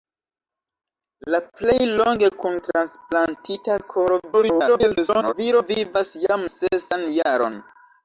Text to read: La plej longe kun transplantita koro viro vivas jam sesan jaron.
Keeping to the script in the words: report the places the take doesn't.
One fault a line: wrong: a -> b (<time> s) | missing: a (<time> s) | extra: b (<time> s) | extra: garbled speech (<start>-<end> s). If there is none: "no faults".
extra: garbled speech (4.3-5.3 s)